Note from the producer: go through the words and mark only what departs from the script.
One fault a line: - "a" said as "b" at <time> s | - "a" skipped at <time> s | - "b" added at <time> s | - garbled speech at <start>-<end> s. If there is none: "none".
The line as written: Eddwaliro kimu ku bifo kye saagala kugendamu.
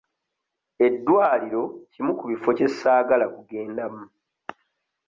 none